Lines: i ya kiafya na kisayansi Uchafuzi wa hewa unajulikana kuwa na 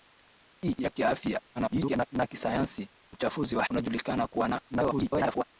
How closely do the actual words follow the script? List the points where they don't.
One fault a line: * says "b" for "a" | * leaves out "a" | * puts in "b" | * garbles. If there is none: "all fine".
* garbles
* leaves out "hewa"
* garbles